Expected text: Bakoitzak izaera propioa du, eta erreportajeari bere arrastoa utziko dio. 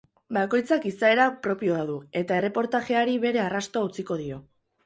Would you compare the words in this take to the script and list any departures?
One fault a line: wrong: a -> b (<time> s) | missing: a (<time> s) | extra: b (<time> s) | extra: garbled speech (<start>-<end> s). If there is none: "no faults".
no faults